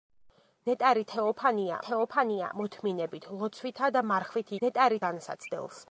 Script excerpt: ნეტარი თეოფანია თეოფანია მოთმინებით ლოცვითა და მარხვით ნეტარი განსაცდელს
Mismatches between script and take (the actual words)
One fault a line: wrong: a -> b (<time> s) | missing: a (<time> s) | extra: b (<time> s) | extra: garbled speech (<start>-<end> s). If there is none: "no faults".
no faults